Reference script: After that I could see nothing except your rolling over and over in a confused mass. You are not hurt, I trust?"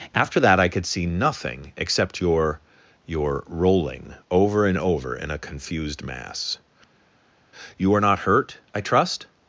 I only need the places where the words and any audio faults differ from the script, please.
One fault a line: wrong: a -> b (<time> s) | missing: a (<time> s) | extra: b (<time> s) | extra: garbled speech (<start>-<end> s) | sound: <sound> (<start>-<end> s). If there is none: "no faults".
extra: your (3.0 s)